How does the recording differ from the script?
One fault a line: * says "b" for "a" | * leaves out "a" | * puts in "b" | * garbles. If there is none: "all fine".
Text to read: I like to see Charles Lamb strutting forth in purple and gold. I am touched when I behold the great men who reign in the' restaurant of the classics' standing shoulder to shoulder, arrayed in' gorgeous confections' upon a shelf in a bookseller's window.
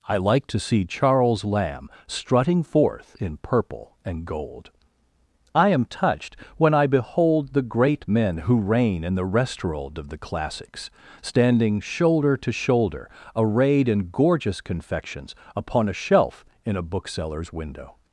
all fine